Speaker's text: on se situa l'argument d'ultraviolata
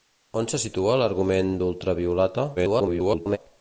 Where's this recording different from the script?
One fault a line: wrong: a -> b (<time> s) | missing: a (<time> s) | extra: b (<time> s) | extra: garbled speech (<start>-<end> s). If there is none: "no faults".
extra: garbled speech (2.6-3.4 s)